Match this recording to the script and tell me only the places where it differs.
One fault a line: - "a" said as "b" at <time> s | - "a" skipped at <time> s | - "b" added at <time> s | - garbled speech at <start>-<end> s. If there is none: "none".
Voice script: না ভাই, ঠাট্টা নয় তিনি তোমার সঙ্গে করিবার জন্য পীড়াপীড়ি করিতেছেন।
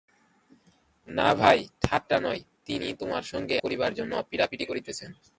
none